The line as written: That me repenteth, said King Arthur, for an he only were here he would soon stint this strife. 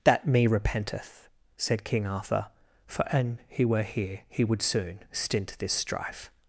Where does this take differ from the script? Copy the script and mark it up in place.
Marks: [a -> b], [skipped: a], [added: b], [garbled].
That me repenteth, said King Arthur, for an he [skipped: only] were here he would soon stint this strife.